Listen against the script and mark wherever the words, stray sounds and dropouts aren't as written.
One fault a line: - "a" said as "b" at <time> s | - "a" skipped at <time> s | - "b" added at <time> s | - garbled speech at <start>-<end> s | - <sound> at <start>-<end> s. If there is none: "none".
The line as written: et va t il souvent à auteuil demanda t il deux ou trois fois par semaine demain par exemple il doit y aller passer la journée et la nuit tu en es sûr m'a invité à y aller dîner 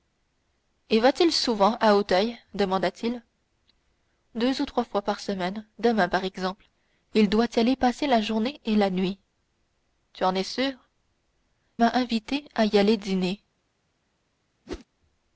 - whoosh at 14.7-14.9 s